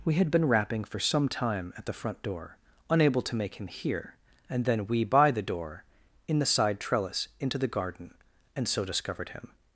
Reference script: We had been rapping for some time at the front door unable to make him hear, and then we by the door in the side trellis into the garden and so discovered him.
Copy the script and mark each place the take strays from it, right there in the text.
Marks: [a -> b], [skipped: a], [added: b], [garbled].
We had been rapping for some time at the front door unable to make him hear, and then we by the door in the side trellis into the garden and so discovered him.